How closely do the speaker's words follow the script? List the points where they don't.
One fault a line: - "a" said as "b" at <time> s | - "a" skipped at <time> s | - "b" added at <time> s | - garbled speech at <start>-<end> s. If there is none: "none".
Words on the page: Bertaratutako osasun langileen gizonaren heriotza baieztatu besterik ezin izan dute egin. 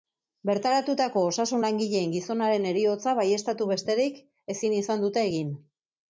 none